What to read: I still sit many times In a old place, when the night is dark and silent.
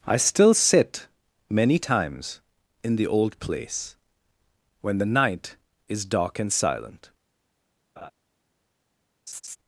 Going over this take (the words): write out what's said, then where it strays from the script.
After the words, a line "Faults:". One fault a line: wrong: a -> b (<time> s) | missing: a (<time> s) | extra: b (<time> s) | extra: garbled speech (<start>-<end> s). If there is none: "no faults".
I still sit many times In the old place, when the night is dark and silent.
Faults:
wrong: a -> the (2.9 s)